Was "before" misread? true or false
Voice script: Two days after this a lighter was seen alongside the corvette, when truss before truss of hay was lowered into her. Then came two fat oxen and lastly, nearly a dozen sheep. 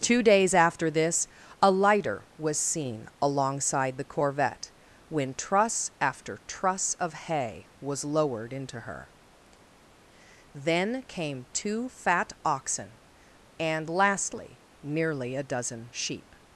true